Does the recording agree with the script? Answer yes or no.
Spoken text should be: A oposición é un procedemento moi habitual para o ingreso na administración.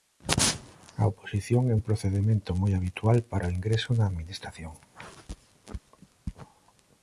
yes